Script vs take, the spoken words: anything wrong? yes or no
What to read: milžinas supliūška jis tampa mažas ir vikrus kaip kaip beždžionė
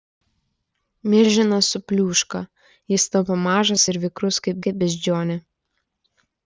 no